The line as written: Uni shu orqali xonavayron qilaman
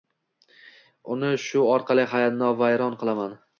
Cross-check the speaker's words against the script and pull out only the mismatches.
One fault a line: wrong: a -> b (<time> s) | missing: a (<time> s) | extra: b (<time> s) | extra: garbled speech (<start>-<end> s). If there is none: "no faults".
no faults